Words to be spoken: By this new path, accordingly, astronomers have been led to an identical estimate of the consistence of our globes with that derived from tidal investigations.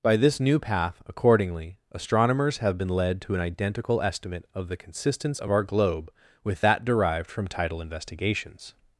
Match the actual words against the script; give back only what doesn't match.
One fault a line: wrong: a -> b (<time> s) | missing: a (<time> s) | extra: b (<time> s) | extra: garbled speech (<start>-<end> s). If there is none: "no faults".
wrong: globes -> globe (5.6 s)